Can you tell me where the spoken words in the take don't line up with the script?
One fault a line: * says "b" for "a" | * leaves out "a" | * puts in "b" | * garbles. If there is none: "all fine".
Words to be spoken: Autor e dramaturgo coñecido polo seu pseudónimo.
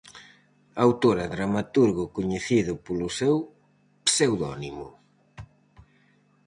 all fine